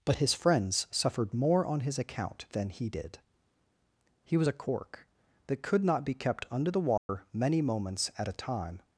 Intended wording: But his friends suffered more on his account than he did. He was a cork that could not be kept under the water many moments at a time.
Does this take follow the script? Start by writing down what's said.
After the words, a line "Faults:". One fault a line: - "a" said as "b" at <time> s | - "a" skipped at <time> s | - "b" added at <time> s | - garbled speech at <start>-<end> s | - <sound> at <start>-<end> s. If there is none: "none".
But his friends suffered more on his account than he did. He was a cork that could not be kept under the water many moments at a time.
Faults:
- dropout at 7.0-7.1 s